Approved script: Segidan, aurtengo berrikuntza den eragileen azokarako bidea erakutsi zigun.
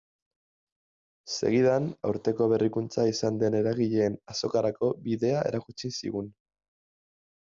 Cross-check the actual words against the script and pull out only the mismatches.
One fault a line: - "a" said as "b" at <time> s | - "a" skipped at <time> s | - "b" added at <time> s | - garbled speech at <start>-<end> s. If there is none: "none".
- "izan" added at 3.1 s